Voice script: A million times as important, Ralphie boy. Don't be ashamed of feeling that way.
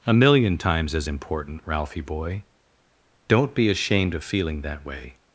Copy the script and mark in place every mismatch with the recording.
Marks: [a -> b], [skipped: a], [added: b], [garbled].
A million times as important, Ralphie boy. Don't be ashamed of feeling that way.